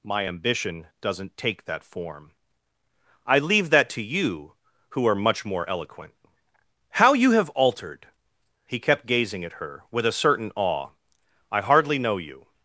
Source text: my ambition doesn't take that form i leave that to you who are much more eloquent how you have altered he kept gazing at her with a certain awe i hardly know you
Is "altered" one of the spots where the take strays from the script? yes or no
no